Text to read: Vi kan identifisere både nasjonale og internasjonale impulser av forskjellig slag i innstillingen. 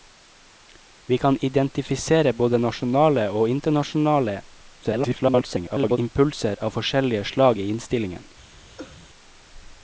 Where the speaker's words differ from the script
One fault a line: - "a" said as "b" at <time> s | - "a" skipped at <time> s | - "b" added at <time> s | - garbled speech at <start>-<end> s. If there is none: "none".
- garbled speech at 4.8-6.0 s